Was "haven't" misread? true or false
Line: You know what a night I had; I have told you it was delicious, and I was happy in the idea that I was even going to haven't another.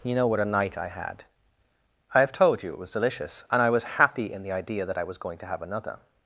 true